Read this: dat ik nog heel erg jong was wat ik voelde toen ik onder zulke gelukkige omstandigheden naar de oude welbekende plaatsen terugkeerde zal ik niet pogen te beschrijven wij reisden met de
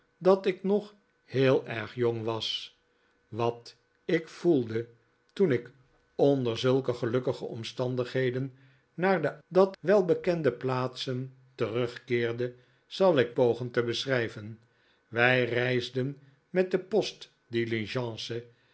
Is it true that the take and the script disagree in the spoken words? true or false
true